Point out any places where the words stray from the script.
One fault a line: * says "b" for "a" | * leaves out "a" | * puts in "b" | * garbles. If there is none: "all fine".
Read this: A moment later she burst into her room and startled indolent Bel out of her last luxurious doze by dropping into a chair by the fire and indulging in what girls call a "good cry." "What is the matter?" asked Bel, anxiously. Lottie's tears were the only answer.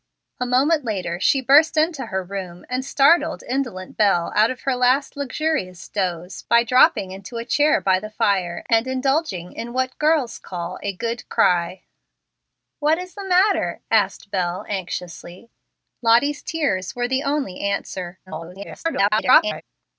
* garbles